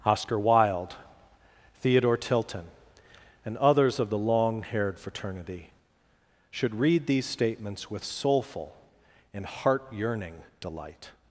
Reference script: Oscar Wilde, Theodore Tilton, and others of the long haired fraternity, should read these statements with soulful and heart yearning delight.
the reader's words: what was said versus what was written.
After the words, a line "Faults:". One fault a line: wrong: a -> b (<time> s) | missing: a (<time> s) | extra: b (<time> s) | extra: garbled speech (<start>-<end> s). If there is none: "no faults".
Oscar Wilde, Theodore Tilton, and others of the long haired fraternity, should read these statements with soulful and heart yearning delight.
Faults:
no faults